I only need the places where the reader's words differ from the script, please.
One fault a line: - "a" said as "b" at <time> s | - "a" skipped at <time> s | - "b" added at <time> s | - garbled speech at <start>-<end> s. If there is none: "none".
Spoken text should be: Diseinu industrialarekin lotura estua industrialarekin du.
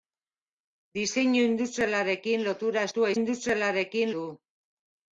none